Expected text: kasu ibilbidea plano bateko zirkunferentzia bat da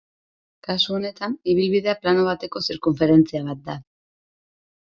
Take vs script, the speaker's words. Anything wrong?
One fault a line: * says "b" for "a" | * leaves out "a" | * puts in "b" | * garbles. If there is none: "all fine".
* puts in "honetan"